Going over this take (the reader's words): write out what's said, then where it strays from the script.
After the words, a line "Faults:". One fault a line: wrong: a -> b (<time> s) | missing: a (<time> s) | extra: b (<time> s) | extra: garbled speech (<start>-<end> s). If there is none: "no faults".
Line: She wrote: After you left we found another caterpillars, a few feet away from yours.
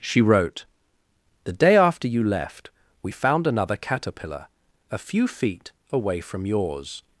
She wrote: The day after you left we found another caterpillar, a few feet away from yours.
Faults:
extra: The day (1.4 s)
wrong: caterpillars -> caterpillar (3.8 s)